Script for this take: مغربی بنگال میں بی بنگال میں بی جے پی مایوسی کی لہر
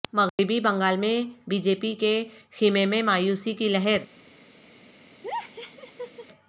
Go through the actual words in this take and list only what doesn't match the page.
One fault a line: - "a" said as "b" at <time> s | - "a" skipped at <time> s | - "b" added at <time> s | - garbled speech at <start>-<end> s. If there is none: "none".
- "بنگال میں بی جے پی" said as "جے پی کے خیمے میں" at 1.6 s